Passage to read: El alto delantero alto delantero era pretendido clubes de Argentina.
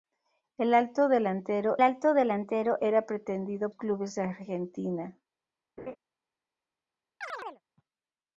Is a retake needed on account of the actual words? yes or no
no